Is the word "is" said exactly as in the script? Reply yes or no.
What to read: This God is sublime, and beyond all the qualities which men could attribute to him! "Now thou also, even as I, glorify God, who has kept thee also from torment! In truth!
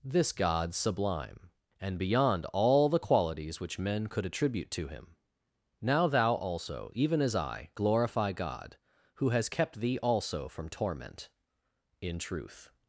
no